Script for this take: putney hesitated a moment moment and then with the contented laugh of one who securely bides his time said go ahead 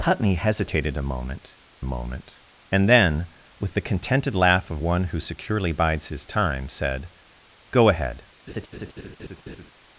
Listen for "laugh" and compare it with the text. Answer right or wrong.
right